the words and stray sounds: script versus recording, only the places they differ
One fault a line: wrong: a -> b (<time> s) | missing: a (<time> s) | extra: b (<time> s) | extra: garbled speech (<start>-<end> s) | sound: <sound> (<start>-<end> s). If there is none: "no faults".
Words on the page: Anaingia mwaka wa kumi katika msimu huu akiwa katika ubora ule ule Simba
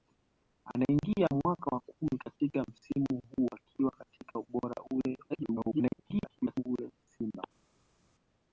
extra: garbled speech (5.3-6.6 s)